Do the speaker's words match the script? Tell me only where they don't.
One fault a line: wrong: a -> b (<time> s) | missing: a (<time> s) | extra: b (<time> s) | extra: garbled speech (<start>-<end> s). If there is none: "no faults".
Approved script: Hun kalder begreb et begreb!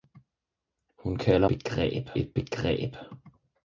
no faults